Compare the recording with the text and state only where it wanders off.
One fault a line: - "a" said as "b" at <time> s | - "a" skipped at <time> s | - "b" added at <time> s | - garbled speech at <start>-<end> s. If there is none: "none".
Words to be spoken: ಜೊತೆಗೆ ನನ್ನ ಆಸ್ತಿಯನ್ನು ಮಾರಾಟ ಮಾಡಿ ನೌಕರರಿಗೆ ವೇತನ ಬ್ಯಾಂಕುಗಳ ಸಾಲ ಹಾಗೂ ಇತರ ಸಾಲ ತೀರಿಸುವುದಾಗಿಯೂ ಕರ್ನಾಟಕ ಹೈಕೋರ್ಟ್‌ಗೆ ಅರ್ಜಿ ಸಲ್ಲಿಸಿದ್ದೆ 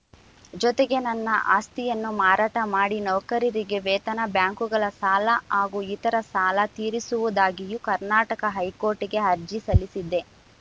none